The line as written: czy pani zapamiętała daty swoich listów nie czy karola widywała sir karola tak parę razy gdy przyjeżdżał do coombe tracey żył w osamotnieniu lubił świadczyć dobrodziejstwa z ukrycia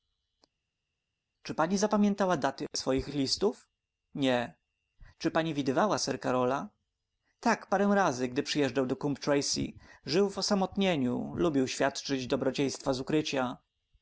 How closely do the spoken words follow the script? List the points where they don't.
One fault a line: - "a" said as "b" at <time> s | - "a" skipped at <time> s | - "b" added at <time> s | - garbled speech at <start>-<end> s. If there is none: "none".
- "karola" said as "pani" at 5.3 s